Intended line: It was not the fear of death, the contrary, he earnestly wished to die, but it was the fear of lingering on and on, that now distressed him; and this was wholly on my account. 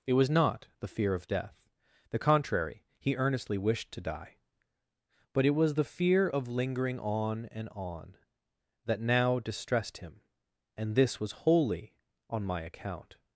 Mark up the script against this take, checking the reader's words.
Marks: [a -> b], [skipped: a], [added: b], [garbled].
It was not the fear of death, the contrary, he earnestly wished to die, but it was the fear of lingering on and on, that now distressed him; and this was wholly on my account.